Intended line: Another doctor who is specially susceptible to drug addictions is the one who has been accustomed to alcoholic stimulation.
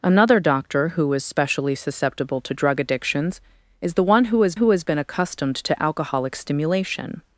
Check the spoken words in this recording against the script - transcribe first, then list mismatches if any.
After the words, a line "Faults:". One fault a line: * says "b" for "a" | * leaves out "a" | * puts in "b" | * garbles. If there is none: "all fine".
Another doctor who is specially susceptible to drug addictions is the one who has who has been accustomed to alcoholic stimulation.
Faults:
* puts in "who has"